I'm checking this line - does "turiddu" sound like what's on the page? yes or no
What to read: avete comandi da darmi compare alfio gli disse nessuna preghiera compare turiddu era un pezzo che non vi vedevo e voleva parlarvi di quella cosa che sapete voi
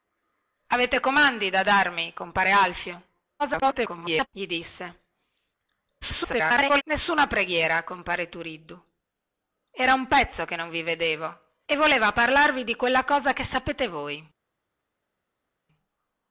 yes